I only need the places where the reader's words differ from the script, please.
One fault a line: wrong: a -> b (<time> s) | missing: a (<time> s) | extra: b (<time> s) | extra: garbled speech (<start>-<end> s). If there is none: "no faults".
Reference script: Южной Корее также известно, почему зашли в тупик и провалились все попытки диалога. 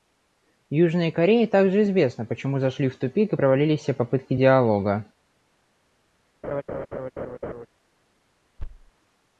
no faults